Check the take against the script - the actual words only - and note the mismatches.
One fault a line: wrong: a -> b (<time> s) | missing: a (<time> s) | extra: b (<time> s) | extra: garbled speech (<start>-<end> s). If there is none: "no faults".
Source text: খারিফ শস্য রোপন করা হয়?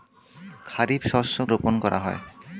no faults